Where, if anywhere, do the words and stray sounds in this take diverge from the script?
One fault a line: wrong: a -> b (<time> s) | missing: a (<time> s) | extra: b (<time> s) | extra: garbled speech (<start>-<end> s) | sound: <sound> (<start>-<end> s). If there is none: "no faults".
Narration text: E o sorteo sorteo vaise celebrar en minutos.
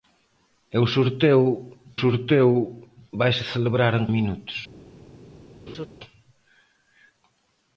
sound: laugh (5.7-5.9 s)